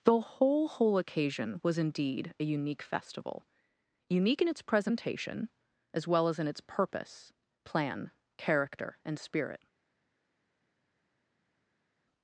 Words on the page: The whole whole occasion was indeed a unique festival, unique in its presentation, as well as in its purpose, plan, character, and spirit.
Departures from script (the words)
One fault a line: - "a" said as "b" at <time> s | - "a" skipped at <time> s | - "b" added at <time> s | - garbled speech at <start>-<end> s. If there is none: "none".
none